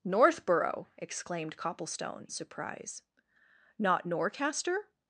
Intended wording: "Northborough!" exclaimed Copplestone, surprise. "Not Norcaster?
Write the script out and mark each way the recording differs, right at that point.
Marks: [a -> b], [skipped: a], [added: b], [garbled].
"Northborough!" exclaimed Copplestone, surprise. "Not Norcaster?